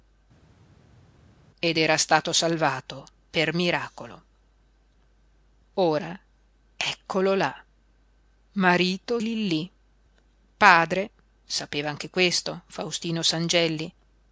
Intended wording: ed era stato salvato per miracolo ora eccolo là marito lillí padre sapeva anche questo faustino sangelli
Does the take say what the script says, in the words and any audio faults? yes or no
yes